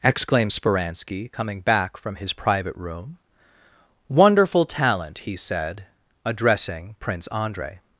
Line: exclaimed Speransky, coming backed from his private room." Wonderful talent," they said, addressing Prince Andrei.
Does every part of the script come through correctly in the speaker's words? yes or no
no